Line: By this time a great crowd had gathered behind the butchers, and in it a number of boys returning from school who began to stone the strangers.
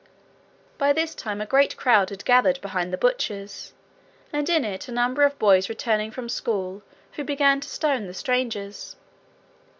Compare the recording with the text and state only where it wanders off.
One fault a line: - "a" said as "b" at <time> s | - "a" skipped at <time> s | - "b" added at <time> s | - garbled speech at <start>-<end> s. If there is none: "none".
none